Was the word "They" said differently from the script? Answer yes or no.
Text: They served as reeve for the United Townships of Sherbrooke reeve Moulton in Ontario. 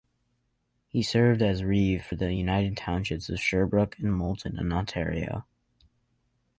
yes